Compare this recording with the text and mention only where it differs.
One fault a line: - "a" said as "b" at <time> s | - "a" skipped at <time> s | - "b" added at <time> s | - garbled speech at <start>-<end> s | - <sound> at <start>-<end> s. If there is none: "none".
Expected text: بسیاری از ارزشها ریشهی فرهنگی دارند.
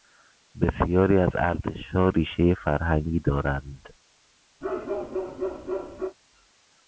- bark at 4.6-6.2 s